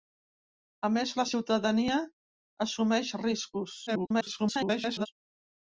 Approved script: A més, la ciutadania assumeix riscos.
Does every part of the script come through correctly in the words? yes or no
no